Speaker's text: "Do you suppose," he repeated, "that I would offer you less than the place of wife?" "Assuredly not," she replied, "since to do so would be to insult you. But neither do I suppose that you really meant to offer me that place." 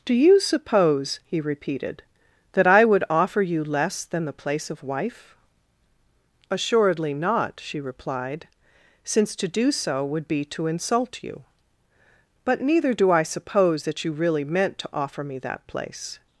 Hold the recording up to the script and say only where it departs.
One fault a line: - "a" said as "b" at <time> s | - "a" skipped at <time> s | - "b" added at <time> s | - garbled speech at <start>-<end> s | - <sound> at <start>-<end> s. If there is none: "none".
none